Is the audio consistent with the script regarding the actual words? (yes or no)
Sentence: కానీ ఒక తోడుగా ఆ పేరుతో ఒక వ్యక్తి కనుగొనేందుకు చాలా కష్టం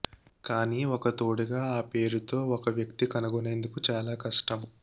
yes